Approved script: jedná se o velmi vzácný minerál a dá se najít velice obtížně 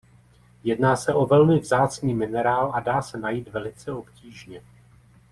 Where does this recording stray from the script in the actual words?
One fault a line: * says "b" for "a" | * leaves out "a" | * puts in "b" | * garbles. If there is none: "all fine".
all fine